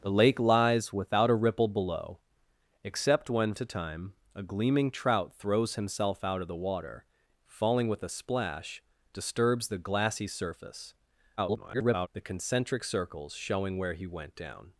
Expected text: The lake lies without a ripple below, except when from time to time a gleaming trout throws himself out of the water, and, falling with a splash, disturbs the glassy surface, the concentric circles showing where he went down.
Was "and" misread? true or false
true